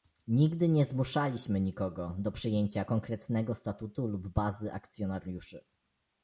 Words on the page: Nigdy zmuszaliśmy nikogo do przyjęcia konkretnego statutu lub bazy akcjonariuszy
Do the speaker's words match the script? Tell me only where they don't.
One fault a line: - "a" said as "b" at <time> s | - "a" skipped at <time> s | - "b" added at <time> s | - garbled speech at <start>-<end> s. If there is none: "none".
- "nie" added at 0.7 s